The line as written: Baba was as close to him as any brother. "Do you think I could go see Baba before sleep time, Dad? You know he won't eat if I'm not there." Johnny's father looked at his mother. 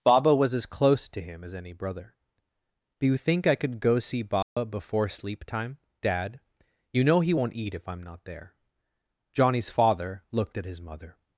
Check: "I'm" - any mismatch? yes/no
no